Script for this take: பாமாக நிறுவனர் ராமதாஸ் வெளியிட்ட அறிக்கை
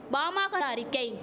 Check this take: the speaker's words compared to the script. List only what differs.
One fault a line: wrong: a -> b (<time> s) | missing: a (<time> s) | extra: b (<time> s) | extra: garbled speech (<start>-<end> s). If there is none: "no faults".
missing: நிறுவனர் ராமதாஸ் வெளியிட்ட (0.6 s)